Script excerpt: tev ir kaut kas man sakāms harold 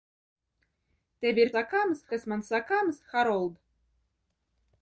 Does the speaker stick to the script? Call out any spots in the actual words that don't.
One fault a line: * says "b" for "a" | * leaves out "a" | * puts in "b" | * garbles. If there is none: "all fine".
* says "sakāms" for "kaut"